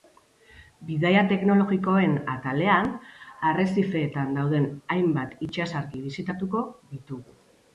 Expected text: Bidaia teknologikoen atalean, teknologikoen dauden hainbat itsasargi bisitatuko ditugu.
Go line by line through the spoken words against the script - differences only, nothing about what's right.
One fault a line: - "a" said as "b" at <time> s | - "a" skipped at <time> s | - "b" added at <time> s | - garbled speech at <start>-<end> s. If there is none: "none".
- "teknologikoen" said as "arrezifeetan" at 3.5 s